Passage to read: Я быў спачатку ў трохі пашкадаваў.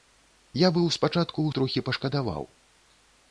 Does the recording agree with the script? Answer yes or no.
yes